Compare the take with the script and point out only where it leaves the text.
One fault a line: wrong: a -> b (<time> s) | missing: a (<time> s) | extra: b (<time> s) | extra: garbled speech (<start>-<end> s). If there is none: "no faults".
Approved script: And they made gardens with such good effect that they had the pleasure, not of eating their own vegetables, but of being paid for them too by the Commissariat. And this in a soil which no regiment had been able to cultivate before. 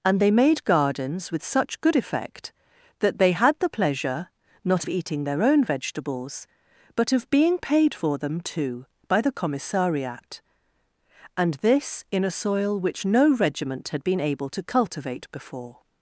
no faults